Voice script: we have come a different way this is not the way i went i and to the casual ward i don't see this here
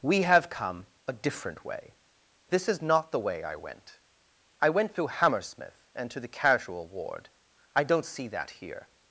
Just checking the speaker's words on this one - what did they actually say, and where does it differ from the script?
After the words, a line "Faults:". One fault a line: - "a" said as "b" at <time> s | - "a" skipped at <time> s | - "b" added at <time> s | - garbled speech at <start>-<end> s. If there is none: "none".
we have come a different way this is not the way i went i went through hammersmith and to the casual ward i don't see that here
Faults:
- "went through hammersmith" added at 4.7 s
- "this" said as "that" at 8.3 s